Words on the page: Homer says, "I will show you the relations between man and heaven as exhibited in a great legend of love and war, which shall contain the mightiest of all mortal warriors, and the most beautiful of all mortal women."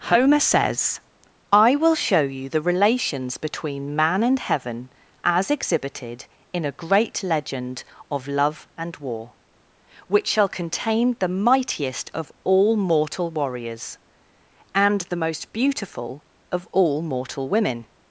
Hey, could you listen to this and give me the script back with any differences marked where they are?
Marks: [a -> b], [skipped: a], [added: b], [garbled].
Homer says, "I will show you the relations between man and heaven as exhibited in a great legend of love and war, which shall contain the mightiest of all mortal warriors, and the most beautiful of all mortal women."